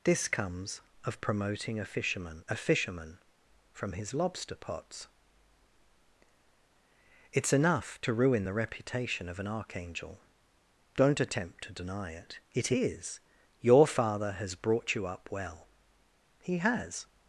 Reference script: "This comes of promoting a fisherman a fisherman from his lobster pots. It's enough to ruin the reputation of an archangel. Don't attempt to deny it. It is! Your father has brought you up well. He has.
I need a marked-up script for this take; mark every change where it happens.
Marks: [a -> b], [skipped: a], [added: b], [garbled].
"This comes of promoting a fisherman a fisherman from his lobster pots. It's enough to ruin the reputation of an archangel. Don't attempt to deny it. It is! Your father has brought you up well. He has.